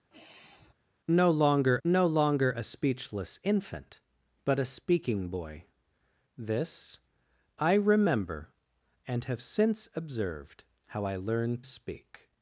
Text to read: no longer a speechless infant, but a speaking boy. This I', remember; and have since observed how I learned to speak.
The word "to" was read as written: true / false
false